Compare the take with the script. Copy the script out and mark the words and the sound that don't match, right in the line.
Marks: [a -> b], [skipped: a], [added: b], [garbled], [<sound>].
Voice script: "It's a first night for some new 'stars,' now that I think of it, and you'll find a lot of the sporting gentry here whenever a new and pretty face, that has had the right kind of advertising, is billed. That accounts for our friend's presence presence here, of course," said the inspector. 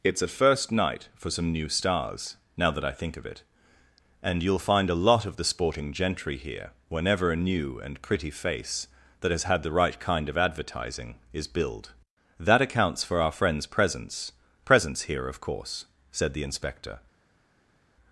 "It's a first night for some new 'stars,' now that I think of it, and you'll find a lot of the sporting gentry here whenever a new and pretty face, that has had the right kind of advertising, is billed. That accounts for our friend's presence presence here, of course," said the inspector.